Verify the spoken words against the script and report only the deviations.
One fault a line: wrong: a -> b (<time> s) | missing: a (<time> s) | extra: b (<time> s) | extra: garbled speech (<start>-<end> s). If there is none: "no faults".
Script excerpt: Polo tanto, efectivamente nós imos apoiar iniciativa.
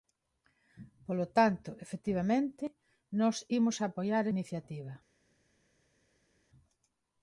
no faults